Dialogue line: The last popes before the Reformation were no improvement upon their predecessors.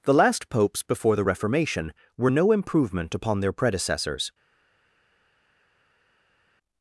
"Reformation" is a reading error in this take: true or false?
false